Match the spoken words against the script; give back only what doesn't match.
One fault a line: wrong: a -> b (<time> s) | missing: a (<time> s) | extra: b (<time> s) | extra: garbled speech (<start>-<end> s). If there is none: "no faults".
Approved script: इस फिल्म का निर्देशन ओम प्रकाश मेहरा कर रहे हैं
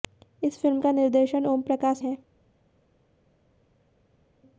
missing: मेहरा कर रहे (2.0 s)